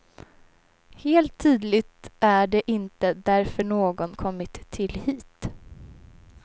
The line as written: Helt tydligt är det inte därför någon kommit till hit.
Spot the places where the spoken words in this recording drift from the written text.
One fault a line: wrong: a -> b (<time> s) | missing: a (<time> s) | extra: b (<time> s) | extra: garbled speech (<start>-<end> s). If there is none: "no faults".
no faults